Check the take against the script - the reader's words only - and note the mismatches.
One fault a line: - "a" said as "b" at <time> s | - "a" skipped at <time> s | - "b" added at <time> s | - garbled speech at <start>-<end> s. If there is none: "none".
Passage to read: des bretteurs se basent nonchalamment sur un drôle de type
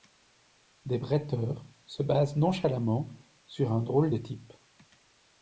none